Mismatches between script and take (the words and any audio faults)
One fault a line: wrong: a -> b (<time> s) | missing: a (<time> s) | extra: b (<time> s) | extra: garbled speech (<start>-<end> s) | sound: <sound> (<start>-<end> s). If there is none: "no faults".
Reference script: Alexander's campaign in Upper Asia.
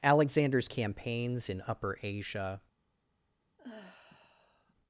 wrong: campaign -> campaigns (0.7 s)
sound: sigh (3.6-4.7 s)